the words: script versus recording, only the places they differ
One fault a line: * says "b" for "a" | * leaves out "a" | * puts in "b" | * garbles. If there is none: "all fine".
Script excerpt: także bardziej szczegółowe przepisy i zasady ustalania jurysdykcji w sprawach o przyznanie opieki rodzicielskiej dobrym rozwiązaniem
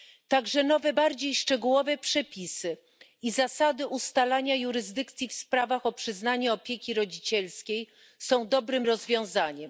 * puts in "nowe"
* puts in "są"